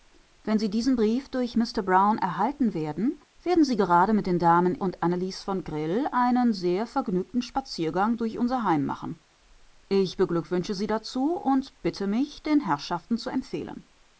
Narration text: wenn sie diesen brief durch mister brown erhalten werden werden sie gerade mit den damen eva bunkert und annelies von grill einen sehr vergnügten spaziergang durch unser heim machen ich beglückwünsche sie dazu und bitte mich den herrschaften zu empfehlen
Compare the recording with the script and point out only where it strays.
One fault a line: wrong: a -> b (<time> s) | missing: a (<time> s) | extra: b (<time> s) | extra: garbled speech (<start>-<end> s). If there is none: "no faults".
missing: eva bunkert (4.8 s)